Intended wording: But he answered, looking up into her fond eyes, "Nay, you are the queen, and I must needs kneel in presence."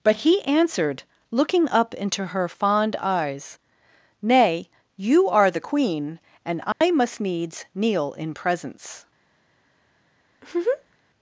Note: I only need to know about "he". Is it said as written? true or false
true